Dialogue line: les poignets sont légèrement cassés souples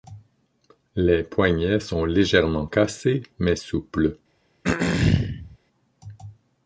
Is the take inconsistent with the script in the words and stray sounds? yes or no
yes